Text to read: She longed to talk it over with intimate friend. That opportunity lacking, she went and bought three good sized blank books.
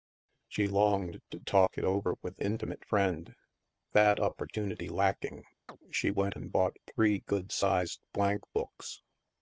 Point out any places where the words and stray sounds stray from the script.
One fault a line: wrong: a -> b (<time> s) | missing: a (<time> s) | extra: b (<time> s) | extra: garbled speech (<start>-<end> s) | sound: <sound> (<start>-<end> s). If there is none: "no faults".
sound: chirp (5.7-5.8 s)